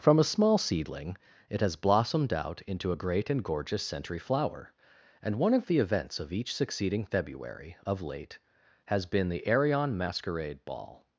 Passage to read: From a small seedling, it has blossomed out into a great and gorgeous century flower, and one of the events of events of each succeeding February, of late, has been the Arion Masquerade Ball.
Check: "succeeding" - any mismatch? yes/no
no